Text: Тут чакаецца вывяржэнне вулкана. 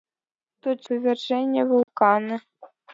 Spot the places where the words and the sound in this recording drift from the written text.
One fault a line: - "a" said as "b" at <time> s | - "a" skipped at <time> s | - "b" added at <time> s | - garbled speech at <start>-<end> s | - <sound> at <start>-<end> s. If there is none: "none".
- "чакаецца" skipped at 0.8 s
- dropout at 1.8-1.9 s